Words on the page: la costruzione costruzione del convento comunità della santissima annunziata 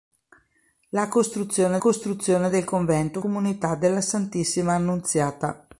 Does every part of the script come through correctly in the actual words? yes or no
yes